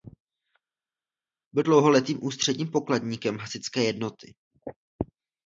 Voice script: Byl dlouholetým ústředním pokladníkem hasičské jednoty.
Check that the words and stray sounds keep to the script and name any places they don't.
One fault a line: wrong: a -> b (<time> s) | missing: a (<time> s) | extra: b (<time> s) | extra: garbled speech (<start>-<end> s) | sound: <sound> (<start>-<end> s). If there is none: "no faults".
no faults